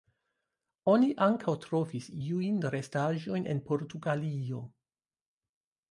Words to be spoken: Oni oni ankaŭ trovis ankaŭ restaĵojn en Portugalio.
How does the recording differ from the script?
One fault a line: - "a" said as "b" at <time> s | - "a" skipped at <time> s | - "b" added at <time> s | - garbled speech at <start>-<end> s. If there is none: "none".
- "oni" skipped at 1.1 s
- "ankaŭ" said as "iujn" at 2.3 s